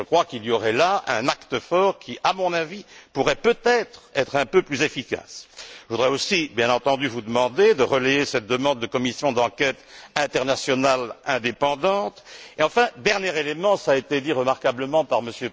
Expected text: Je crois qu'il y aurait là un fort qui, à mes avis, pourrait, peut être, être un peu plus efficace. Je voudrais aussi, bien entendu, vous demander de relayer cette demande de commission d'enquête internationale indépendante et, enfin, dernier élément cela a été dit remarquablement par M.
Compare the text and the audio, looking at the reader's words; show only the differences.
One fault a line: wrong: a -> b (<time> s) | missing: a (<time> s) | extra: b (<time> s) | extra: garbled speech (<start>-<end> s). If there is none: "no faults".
extra: acte (1.3 s)
wrong: mes -> mon (2.3 s)